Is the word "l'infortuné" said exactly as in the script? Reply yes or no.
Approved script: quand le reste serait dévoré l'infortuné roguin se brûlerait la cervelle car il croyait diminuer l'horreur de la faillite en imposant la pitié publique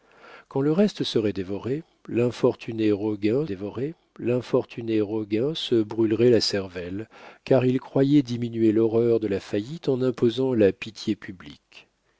yes